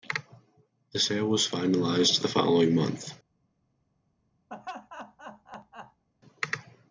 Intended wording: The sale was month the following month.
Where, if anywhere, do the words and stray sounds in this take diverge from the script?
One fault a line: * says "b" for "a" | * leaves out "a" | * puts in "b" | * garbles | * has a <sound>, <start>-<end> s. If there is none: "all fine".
* says "finalized" for "month"
* has a laugh, 4.5-6.0 s